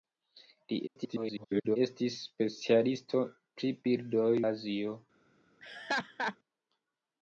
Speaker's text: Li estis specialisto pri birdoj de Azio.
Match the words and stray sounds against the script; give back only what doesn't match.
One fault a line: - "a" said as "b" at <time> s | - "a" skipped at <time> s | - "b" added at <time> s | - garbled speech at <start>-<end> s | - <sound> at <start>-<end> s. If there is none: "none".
- garbled speech at 0.9-1.8 s
- "de" skipped at 4.3 s
- laugh at 5.6-6.4 s